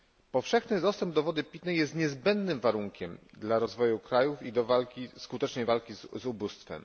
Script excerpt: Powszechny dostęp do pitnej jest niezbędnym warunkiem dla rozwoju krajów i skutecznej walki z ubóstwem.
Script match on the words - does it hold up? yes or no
no